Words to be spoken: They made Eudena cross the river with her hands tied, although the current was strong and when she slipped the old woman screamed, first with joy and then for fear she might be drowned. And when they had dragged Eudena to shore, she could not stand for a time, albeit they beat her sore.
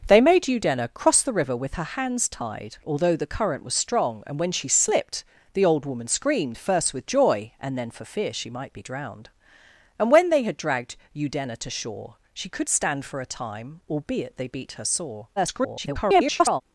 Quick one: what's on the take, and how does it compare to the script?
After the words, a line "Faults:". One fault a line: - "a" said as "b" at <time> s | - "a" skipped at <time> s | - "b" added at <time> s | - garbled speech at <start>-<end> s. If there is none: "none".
They made Eudena cross the river with her hands tied, although the current was strong and when she slipped the old woman screamed, first with joy and then for fear she might be drowned. And when they had dragged Eudena to shore, she could stand for a time, albeit they beat her sore. [garbled]
Faults:
- "not" skipped at 12.7 s
- garbled speech at 15.4-16.6 s